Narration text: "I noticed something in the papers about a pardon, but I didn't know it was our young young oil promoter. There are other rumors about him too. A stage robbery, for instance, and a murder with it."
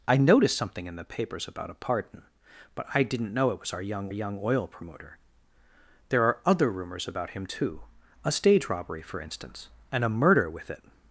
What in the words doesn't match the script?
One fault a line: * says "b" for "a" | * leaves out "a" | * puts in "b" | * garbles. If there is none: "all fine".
all fine